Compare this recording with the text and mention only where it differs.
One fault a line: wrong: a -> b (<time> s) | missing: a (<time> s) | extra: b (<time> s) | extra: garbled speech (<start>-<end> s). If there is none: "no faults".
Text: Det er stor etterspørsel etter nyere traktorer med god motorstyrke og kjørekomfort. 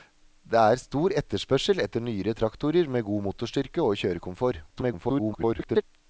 extra: garbled speech (4.7-5.8 s)